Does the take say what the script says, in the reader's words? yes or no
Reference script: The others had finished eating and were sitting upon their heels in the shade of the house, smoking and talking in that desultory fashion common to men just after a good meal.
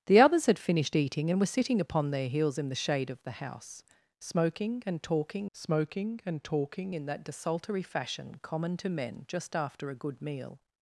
no